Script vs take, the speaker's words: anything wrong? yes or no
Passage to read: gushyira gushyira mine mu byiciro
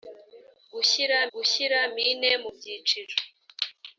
no